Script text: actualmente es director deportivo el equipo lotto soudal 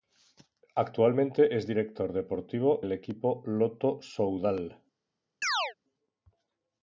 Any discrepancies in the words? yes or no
no